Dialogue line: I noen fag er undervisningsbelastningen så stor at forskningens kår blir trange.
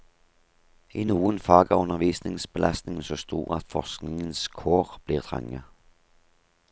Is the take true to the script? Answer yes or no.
yes